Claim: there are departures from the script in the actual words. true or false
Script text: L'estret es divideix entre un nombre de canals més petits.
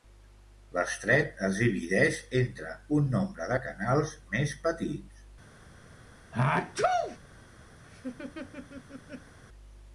false